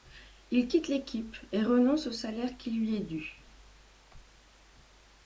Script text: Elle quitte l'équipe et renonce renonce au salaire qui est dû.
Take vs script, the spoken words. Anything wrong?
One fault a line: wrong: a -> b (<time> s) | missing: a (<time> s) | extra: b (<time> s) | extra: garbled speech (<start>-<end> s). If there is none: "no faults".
wrong: Elle -> Il (0.5 s)
missing: renonce (2.1 s)
extra: lui (2.7 s)